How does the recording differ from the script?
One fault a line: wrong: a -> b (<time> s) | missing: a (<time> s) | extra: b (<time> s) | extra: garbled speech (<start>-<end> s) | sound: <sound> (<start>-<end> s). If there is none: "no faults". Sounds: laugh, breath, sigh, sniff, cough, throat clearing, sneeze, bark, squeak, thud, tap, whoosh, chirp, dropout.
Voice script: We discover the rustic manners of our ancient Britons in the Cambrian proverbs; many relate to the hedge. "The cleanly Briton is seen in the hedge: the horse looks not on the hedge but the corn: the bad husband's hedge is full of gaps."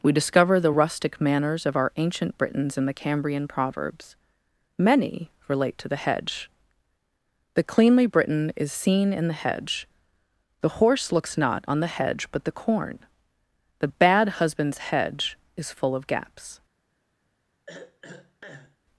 sound: throat clearing (17.7-18.8 s)